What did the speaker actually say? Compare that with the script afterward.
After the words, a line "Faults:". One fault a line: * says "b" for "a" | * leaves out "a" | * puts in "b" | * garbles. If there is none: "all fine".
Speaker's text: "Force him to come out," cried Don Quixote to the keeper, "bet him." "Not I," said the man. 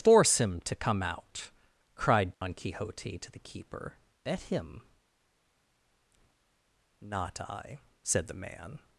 "Force him to come out," cried Don Quixote to the keeper, "bet him." "Not I," said the man.
Faults:
all fine